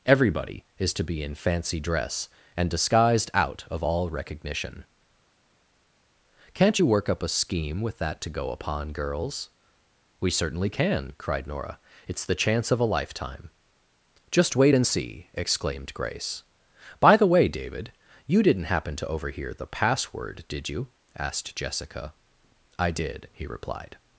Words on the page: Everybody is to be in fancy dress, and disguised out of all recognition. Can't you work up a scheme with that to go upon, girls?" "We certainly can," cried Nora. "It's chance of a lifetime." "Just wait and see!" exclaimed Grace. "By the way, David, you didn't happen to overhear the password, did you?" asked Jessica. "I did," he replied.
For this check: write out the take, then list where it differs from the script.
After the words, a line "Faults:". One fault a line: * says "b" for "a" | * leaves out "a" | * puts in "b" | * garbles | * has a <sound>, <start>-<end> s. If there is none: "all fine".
Everybody is to be in fancy dress, and disguised out of all recognition. Can't you work up a scheme with that to go upon, girls?" "We certainly can," cried Nora. "It's the chance of a lifetime." "Just wait and see!" exclaimed Grace. "By the way, David, you didn't happen to overhear the password, did you?" asked Jessica. "I did," he replied.
Faults:
* puts in "the"